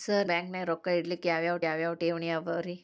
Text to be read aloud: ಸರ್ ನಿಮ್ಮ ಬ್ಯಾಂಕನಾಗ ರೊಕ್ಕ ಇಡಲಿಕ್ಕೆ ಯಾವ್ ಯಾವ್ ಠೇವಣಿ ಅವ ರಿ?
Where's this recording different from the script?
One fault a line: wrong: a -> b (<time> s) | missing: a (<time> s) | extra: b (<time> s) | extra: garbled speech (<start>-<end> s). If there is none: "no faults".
missing: ನಿಮ್ಮ (0.3 s)
extra: ಯಾವ್ ಯಾವ್ (1.6 s)